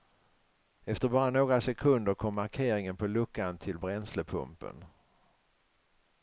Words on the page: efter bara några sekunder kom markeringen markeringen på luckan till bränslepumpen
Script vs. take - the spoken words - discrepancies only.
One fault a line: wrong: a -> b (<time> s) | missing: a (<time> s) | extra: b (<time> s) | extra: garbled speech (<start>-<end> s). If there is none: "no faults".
missing: markeringen (3.0 s)